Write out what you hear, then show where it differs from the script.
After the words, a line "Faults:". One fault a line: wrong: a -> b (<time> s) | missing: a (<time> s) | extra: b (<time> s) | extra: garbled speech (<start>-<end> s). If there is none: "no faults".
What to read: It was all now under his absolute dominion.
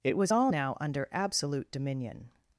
It was all now under absolute dominion.
Faults:
missing: his (1.1 s)